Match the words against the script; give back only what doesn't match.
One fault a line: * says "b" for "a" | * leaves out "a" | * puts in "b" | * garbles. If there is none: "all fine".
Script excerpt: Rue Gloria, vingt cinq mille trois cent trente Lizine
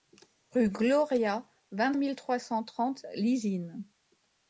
* leaves out "cinq"